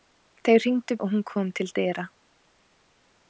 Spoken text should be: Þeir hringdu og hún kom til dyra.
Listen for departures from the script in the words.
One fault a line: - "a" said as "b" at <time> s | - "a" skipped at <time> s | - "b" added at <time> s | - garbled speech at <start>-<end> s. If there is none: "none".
none